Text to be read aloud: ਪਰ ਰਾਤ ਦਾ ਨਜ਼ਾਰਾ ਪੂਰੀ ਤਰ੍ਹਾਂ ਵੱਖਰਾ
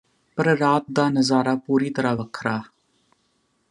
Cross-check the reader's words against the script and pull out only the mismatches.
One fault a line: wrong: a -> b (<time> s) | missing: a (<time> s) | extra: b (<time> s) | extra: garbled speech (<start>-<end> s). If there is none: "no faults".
no faults